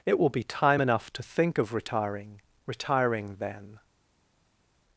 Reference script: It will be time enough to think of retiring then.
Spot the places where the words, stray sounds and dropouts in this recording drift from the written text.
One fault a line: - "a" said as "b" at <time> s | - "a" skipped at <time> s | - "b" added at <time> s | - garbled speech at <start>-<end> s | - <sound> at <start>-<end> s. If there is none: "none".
- "retiring" added at 2.7 s